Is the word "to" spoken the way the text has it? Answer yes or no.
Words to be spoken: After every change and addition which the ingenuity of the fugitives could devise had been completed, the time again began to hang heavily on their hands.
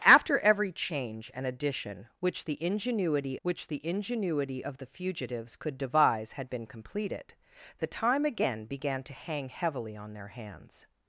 yes